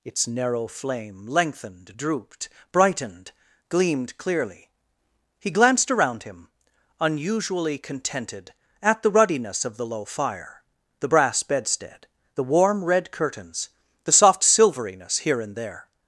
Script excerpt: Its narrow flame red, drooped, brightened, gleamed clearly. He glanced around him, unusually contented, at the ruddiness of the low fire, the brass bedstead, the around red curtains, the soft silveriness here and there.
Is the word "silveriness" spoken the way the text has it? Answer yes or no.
yes